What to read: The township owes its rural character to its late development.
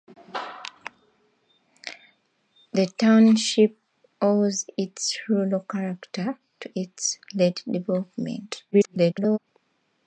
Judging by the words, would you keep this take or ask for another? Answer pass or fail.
fail